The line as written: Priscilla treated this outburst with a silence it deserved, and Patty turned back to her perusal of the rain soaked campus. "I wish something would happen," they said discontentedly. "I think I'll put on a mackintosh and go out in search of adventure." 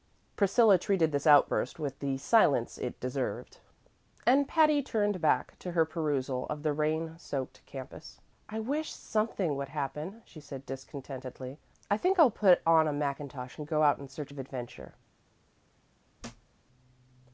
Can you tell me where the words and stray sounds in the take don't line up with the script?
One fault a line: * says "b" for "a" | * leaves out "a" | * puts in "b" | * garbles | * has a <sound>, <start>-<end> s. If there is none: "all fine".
* says "the" for "a"
* says "she" for "they"
* has a thud, 16.2-16.5 s